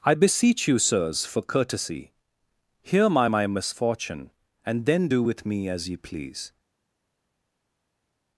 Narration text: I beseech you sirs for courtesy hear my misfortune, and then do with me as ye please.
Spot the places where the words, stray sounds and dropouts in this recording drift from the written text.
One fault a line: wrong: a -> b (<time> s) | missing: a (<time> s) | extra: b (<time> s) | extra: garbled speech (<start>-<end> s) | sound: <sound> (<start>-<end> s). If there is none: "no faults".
extra: my (3.3 s)